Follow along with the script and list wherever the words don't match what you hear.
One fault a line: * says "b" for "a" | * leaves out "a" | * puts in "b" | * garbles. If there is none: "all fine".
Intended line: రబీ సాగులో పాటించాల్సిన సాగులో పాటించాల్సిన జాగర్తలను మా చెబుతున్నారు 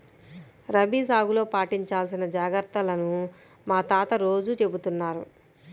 * says "జాగర్తలను మా తాత రోజూ" for "సాగులో పాటించాల్సిన జాగర్తలను మా"